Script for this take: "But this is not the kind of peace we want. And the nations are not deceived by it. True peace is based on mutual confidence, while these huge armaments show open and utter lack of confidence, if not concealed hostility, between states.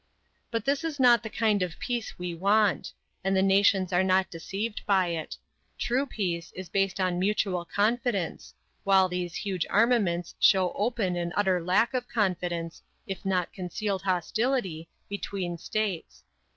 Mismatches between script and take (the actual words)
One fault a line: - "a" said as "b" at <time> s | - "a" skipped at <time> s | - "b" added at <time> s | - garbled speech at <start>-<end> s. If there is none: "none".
none